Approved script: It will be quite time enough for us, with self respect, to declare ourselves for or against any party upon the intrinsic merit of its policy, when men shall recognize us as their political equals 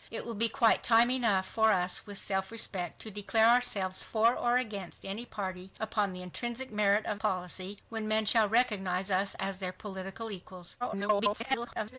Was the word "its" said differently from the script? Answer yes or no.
yes